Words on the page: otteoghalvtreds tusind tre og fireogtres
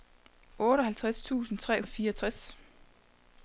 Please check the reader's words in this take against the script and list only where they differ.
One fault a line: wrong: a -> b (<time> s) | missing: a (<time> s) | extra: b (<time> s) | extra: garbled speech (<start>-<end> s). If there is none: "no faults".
no faults